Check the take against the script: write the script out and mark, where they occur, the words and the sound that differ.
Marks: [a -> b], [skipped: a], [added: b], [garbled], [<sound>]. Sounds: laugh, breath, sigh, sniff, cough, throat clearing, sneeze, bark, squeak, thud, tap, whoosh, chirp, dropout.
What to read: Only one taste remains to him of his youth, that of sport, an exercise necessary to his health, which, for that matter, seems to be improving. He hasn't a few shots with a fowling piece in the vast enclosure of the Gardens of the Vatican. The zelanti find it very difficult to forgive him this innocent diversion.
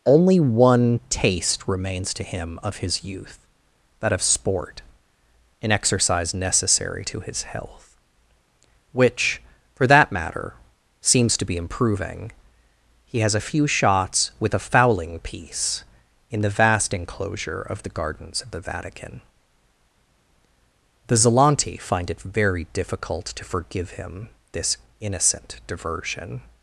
Only one taste remains to him of his youth, that of sport, an exercise necessary to his health, which, for that matter, seems to be improving. He [hasn't -> has] a few shots with a fowling piece in the vast enclosure of the Gardens of the Vatican. The zelanti find it very difficult to forgive him this innocent diversion.